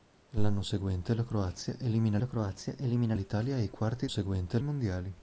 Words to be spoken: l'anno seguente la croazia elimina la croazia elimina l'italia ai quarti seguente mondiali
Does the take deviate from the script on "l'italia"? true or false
false